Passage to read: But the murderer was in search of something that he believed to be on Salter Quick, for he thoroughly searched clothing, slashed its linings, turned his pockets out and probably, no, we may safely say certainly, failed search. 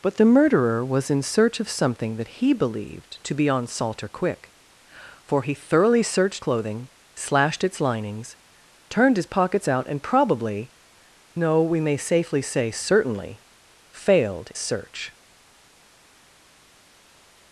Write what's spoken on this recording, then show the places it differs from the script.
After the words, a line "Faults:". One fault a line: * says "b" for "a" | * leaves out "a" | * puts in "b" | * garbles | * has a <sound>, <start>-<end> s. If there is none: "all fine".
But the murderer was in search of something that he believed to be on Salter Quick, for he thoroughly searched clothing, slashed its linings, turned his pockets out and probably, no, we may safely say certainly, failed search.
Faults:
all fine